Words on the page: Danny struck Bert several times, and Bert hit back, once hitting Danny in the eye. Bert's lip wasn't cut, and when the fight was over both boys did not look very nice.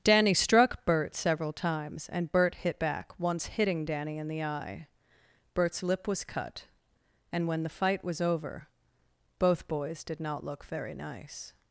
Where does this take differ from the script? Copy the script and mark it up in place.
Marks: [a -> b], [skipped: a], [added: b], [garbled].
Danny struck Bert several times, and Bert hit back, once hitting Danny in the eye. Bert's lip [wasn't -> was] cut, and when the fight was over both boys did not look very nice.